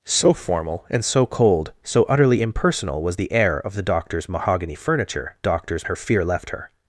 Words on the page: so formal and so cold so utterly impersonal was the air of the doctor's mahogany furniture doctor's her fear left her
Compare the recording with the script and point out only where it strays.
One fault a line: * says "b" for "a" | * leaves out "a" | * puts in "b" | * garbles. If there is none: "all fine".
all fine